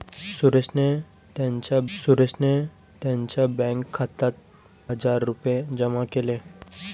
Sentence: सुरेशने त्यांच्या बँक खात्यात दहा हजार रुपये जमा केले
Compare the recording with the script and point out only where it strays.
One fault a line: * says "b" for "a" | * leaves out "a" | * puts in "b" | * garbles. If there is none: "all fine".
* puts in "सुरेशने त्यांच्या"
* leaves out "दहा"